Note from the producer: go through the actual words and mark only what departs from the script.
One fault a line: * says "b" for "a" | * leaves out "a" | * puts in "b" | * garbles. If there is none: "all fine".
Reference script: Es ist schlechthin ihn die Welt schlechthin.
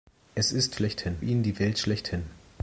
all fine